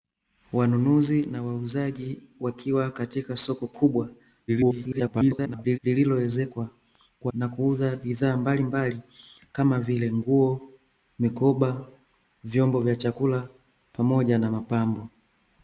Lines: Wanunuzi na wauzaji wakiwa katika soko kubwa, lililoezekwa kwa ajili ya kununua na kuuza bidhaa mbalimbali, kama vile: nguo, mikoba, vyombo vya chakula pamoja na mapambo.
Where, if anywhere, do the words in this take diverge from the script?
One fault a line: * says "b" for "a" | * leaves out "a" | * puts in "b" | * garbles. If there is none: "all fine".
* garbles
* leaves out "ajili ya kununua"